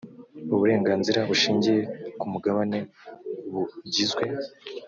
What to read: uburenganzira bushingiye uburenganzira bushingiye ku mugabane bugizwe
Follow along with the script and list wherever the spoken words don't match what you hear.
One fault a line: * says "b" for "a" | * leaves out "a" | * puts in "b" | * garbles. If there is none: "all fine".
* leaves out "uburenganzira bushingiye"